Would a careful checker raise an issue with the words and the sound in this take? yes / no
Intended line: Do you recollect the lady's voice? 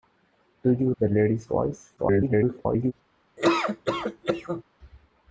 yes